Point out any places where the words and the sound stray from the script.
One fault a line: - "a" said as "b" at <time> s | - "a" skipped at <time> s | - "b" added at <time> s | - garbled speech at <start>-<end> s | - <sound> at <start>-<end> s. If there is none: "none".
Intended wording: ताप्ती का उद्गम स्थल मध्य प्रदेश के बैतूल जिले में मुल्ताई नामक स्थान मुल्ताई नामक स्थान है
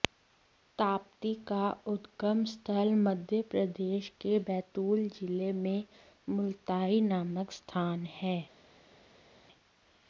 - "मुल्ताई नामक स्थान" skipped at 8.1 s